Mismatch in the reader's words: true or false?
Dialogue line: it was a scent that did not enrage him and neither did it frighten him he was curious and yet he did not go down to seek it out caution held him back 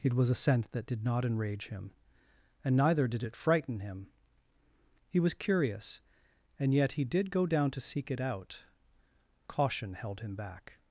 true